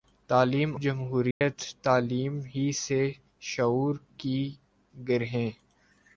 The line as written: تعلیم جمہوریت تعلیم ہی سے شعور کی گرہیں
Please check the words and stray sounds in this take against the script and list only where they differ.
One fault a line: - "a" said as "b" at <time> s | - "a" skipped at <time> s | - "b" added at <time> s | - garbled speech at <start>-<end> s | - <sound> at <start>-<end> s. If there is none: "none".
- dropout at 1.3-1.4 s